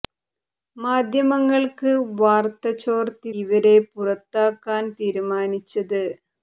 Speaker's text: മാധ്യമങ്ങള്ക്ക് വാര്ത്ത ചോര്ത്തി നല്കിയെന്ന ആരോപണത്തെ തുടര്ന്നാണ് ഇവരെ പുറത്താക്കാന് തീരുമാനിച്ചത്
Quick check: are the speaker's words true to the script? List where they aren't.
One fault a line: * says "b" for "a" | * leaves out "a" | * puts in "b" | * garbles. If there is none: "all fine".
* leaves out "നല്കിയെന്ന ആരോപണത്തെ തുടര്ന്നാണ്"